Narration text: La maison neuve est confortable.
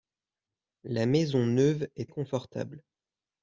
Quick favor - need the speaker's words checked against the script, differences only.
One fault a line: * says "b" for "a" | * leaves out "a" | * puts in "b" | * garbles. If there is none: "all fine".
all fine